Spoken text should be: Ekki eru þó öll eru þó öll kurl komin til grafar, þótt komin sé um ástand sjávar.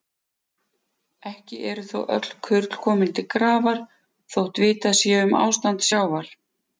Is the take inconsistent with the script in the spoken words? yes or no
yes